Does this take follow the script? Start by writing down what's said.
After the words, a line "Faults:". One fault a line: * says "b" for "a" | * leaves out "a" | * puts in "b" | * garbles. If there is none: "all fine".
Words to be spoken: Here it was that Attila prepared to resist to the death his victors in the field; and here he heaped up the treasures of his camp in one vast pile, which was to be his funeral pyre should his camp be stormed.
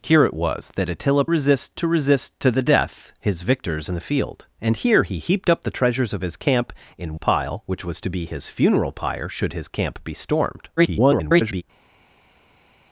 Here it was that Attila resist to resist to the death his victors in the field; and here he heaped up the treasures of his camp in pile, which was to be his funeral pyre should his camp be stormed. [garbled]
Faults:
* says "resist" for "prepared"
* leaves out "one vast"
* garbles